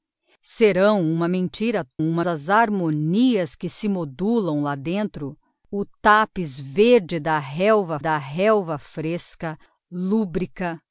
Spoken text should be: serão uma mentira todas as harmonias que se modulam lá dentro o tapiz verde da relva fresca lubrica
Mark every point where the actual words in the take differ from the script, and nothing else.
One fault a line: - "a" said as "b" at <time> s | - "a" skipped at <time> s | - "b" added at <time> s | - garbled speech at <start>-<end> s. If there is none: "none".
- "todas" said as "uma" at 2.0 s
- "da relva" added at 8.0 s